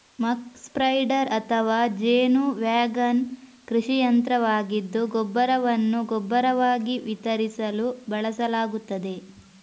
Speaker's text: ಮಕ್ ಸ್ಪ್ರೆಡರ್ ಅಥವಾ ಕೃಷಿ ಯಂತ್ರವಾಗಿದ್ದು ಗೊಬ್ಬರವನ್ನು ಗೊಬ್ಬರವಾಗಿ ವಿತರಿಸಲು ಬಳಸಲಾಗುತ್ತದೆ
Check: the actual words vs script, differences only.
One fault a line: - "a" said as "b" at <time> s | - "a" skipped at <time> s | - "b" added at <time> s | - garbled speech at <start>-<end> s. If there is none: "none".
- "ಜೇನು ವ್ಯಾಗನ್" added at 2.0 s